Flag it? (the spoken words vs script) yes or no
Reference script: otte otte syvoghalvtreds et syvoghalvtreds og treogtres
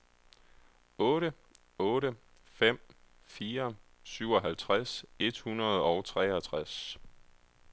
yes